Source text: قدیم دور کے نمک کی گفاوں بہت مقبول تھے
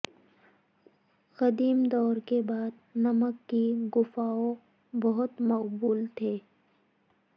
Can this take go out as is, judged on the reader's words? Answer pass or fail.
fail